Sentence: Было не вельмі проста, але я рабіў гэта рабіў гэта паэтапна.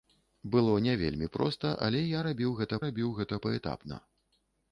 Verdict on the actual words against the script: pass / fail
pass